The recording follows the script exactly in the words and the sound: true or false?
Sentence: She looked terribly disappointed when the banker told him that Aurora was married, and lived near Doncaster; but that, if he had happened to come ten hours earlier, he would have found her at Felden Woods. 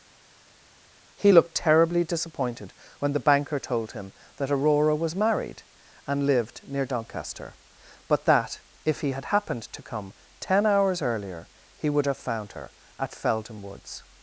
false